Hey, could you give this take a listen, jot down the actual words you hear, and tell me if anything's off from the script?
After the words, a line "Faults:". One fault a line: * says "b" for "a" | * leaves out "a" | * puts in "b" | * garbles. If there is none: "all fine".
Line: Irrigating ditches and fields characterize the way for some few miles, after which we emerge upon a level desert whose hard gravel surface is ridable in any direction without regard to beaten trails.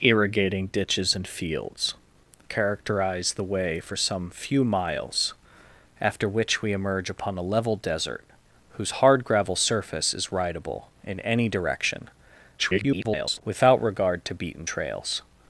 Irrigating ditches and fields characterize the way for some few miles, after which we emerge upon a level desert whose hard gravel surface is ridable in any direction [garbled] without regard to beaten trails.
Faults:
* garbles